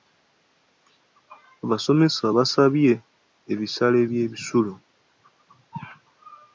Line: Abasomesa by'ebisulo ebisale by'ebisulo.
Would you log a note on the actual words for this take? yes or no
yes